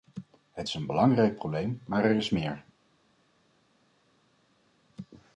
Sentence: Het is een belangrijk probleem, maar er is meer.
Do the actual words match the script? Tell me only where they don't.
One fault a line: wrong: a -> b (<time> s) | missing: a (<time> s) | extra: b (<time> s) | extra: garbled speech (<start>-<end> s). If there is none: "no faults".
no faults